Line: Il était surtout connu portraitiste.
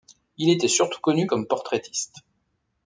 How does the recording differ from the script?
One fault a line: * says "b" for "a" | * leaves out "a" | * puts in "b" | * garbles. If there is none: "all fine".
* puts in "comme"